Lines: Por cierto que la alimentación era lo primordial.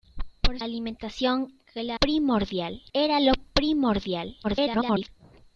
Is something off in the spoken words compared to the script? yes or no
yes